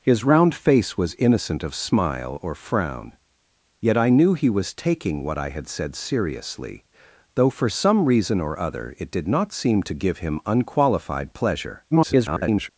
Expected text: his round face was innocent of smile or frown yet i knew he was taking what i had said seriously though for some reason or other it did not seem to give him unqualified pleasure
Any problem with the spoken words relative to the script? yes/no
yes